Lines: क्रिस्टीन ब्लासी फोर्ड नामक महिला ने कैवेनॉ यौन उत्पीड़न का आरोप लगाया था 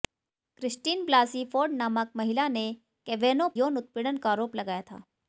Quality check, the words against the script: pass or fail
pass